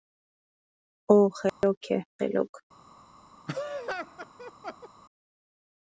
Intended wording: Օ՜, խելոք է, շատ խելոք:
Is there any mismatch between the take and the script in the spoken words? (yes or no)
yes